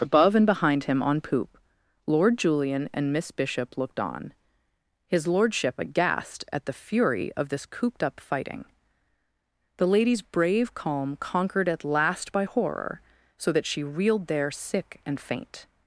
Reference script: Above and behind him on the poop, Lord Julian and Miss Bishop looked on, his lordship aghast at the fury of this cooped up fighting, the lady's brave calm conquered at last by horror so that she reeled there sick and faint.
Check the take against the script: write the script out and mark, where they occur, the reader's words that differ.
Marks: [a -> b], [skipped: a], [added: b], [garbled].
Above and behind him on [skipped: the] poop, Lord Julian and Miss Bishop looked on, his lordship aghast at the fury of this cooped up fighting, the lady's brave calm conquered at last by horror so that she reeled there sick and faint.